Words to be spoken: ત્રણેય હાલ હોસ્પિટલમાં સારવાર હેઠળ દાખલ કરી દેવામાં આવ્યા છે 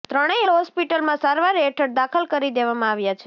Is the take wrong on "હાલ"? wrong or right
wrong